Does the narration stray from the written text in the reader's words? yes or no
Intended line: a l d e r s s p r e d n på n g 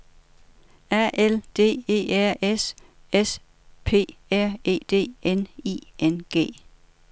yes